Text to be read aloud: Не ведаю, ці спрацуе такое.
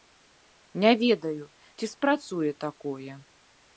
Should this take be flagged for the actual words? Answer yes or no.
no